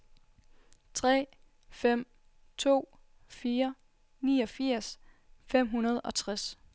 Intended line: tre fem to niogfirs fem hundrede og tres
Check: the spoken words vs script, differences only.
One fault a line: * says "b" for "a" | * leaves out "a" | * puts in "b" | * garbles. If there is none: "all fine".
* puts in "fire"